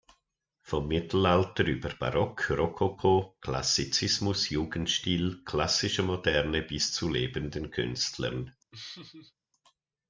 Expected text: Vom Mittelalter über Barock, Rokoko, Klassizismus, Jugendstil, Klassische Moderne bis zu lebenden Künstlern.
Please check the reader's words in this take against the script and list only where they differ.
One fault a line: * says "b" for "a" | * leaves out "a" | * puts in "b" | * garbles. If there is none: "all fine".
all fine